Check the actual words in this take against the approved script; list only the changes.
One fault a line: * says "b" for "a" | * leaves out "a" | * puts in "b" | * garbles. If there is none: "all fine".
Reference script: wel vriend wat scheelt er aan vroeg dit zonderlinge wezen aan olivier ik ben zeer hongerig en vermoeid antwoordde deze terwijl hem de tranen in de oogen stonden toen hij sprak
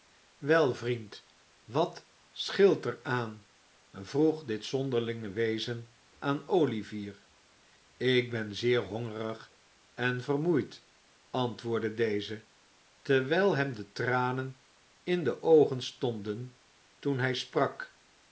all fine